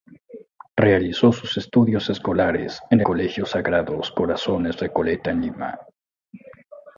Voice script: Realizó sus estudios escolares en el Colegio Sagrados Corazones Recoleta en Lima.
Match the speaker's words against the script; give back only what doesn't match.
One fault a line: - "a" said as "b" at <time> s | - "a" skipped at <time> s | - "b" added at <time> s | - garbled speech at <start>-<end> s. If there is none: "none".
- "el" skipped at 3.0 s